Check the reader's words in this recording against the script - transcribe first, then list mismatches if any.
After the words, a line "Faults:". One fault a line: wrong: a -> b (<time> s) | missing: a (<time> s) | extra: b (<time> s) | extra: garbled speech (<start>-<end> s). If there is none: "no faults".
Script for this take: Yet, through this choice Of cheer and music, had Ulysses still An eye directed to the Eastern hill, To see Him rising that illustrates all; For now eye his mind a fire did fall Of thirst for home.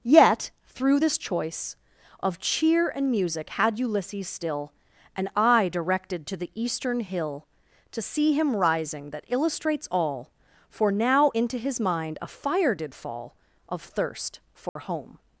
Yet, through this choice Of cheer and music, had Ulysses still An eye directed to the Eastern hill, To see Him rising that illustrates all; For now into his mind a fire did fall Of thirst for home.
Faults:
wrong: eye -> into (11.3 s)